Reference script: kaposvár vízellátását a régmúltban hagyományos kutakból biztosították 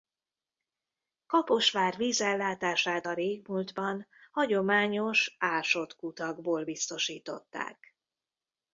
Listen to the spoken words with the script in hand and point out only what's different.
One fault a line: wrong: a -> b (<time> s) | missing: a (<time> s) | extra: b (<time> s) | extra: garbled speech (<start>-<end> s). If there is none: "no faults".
extra: ásott (5.4 s)